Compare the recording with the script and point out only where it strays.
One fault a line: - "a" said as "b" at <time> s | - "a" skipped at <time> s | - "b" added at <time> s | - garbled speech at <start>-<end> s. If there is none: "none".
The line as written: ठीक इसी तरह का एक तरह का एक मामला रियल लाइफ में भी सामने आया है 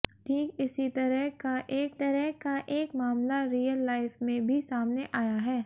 none